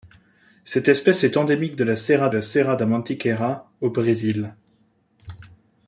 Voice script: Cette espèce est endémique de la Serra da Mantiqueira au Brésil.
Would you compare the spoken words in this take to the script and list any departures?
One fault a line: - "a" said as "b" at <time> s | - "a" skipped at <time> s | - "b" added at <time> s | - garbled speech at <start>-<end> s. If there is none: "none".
- "la Serra" added at 2.3 s